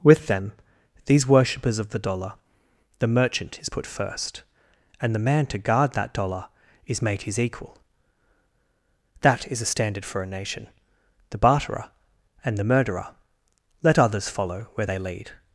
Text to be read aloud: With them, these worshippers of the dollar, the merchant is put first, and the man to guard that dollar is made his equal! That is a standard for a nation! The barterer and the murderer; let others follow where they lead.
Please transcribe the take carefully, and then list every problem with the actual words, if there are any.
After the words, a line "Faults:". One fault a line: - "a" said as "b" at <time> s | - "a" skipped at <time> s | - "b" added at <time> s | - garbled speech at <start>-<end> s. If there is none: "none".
With them, these worshippers of the dollar, the merchant is put first, and the man to guard that dollar is made his equal! That is a standard for a nation! The barterer and the murderer; let others follow where they lead.
Faults:
none